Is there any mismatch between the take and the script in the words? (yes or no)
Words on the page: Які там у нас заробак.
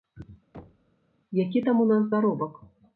no